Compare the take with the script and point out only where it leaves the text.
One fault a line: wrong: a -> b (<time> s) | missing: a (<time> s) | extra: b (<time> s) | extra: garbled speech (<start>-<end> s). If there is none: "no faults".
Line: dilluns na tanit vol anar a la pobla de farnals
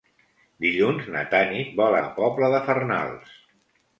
missing: anar a (2.0 s)